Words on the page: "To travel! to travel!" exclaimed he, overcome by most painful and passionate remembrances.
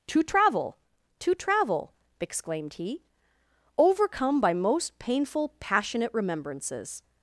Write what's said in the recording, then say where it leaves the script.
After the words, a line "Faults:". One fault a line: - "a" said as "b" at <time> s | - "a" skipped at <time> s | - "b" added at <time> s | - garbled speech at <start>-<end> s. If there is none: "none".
"To travel! to travel!" exclaimed he, overcome by most painful passionate remembrances.
Faults:
- "and" skipped at 5.5 s